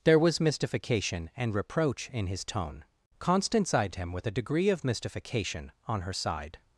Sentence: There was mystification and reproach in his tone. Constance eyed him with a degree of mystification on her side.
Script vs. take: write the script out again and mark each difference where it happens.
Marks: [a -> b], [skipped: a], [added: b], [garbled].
There was mystification and reproach in his tone. Constance eyed him with a degree of mystification on her side.